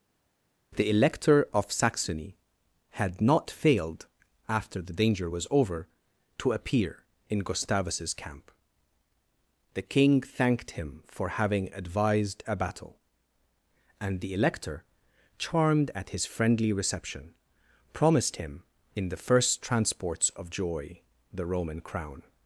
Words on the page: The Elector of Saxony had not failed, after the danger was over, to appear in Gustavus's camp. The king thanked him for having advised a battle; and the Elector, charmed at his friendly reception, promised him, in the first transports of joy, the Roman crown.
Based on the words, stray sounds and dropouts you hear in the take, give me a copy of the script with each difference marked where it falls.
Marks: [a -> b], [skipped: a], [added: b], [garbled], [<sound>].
The Elector of Saxony had not failed, after the danger was over, to appear in Gustavus's camp. The king thanked him for having advised a battle; and the Elector, charmed at his friendly reception, promised him, in the first transports of joy, the Roman crown.